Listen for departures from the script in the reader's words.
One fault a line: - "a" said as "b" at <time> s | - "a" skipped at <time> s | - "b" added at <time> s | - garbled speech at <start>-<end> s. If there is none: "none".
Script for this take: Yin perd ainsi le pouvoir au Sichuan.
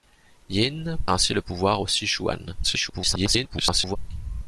- "perd" skipped at 1.0 s
- garbled speech at 2.6-4.0 s